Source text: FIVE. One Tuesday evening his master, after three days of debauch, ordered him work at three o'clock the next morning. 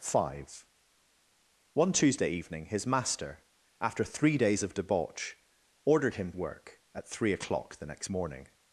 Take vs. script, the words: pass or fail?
pass